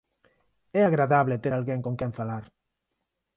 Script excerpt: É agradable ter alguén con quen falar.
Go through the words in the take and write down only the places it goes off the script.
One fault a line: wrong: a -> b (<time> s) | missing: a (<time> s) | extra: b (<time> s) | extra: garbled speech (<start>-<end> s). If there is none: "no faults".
no faults